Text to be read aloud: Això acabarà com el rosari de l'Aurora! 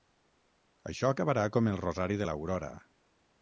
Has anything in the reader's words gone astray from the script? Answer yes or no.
no